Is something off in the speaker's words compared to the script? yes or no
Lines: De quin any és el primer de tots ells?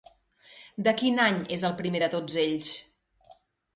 no